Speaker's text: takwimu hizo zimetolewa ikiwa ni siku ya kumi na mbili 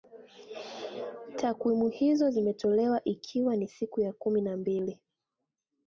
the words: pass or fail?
pass